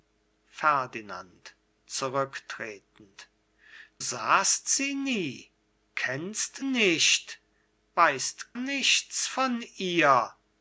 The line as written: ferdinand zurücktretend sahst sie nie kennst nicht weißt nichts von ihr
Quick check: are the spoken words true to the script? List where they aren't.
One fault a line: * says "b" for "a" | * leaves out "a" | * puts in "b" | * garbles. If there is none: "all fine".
all fine